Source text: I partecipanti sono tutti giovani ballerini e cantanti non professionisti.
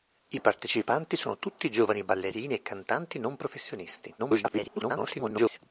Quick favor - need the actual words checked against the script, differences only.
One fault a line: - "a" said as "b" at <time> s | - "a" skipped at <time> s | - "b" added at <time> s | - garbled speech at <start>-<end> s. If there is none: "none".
- garbled speech at 4.2-5.6 s